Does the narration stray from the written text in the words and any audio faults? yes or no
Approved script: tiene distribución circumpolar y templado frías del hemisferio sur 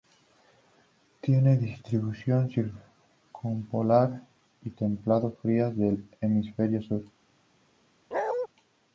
yes